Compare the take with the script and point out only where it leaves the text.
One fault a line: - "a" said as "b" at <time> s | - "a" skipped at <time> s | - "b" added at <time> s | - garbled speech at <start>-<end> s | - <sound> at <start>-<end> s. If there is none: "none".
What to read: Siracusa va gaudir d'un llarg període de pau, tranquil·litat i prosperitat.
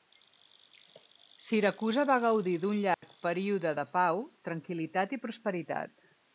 - dropout at 2.9-3.0 s